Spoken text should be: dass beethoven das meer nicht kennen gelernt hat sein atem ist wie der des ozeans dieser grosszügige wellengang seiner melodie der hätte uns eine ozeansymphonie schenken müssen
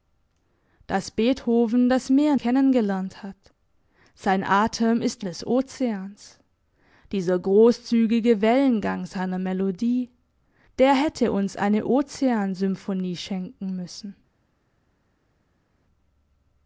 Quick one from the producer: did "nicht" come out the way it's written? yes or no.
no